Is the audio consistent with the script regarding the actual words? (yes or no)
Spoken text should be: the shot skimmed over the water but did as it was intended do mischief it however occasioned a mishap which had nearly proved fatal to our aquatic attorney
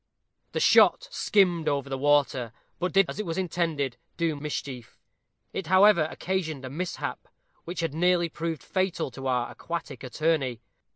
yes